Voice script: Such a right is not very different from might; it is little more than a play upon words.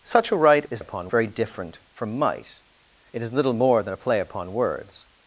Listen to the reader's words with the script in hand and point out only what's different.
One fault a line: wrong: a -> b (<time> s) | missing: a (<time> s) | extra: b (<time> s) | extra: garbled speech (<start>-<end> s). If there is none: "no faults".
wrong: not -> upon (0.8 s)